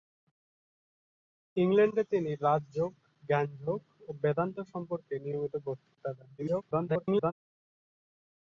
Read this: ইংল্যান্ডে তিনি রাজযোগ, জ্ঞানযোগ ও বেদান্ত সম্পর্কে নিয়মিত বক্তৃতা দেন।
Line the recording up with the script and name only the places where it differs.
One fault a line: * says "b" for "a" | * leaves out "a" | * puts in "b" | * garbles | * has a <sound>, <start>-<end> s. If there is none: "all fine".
* garbles